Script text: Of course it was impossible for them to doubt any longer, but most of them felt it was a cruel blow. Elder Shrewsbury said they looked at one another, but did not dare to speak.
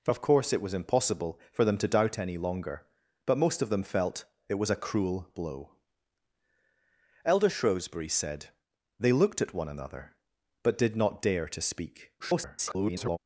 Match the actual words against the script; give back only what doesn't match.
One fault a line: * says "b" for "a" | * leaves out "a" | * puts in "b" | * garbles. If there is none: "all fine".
* garbles